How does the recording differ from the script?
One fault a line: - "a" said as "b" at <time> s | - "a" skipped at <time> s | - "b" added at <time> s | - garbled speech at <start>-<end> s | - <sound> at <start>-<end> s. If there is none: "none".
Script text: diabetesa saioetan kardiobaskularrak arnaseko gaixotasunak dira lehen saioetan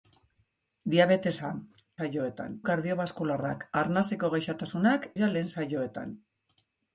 none